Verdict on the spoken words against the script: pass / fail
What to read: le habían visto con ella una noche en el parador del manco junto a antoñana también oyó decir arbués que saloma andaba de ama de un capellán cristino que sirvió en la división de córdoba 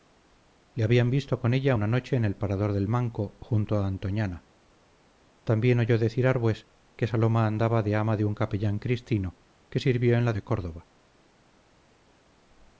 fail